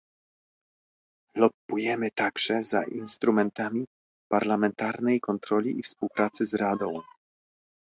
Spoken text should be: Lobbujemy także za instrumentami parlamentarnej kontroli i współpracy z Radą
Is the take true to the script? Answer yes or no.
yes